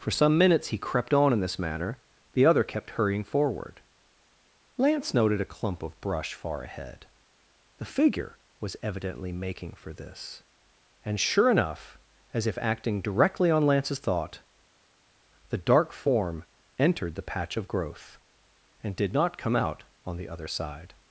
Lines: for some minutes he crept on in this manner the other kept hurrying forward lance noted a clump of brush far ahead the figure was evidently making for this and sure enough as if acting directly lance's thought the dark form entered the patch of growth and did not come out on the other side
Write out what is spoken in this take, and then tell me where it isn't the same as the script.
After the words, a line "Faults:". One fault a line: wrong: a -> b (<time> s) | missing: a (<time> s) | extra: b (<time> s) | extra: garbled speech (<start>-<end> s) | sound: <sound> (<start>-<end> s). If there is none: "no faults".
for some minutes he crept on in this manner the other kept hurrying forward lance noted a clump of brush far ahead the figure was evidently making for this and sure enough as if acting directly on lance's thought the dark form entered the patch of growth and did not come out on the other side
Faults:
extra: on (13.5 s)